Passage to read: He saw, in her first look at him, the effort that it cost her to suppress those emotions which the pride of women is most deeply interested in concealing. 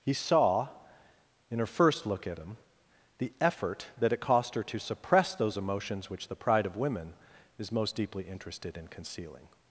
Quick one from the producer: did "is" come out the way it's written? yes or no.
yes